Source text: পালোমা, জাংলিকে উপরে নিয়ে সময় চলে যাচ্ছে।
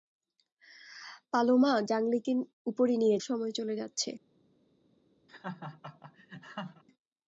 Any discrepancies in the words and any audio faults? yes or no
yes